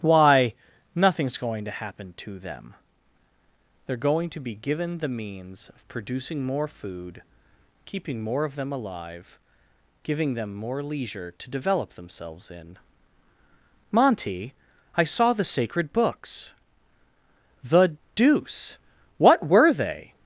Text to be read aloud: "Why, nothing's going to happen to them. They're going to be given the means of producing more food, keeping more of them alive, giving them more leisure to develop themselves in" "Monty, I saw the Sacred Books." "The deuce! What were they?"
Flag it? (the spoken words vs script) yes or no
no